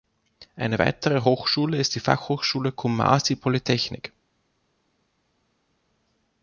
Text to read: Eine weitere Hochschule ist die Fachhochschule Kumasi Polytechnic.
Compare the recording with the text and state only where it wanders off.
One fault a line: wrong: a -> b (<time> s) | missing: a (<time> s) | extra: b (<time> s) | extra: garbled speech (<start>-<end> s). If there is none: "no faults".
no faults